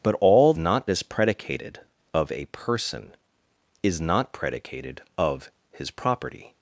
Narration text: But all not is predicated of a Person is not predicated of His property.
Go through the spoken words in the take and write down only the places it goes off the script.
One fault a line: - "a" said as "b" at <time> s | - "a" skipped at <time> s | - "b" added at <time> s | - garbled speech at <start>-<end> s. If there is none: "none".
none